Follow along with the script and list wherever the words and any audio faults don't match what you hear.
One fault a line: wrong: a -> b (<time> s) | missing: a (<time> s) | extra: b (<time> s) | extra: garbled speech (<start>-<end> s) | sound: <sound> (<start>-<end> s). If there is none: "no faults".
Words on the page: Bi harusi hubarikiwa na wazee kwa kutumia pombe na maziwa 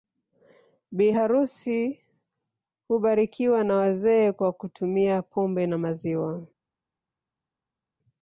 no faults